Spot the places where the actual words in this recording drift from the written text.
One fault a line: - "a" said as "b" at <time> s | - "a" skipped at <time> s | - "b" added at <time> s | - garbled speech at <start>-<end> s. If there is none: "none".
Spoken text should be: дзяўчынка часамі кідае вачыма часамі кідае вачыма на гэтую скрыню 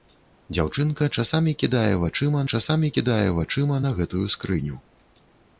none